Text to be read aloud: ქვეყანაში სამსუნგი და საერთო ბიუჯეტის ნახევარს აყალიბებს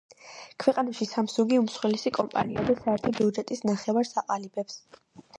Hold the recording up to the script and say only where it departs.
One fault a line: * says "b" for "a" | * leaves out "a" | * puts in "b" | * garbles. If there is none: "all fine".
* puts in "უმსხვილესი კომპანიაა"